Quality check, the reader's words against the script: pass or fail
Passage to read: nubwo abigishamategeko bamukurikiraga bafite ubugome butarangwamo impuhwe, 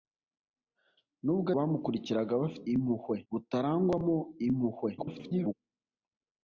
fail